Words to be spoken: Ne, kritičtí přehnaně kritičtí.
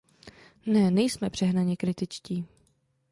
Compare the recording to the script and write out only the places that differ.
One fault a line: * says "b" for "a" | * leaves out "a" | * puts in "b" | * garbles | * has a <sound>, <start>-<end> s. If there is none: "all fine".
* says "nejsme" for "kritičtí"